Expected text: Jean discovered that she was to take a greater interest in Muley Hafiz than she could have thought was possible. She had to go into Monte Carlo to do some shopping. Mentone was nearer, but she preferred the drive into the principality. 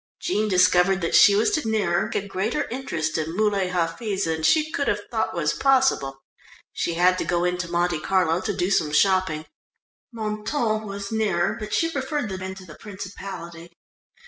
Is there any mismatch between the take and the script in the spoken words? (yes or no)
yes